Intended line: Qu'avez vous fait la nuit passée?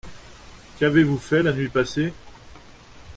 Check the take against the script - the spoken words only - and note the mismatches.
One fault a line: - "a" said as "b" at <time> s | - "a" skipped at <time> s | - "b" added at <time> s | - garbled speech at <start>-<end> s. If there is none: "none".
none